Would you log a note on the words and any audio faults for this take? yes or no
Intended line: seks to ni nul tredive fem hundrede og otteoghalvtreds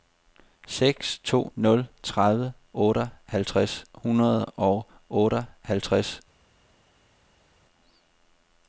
yes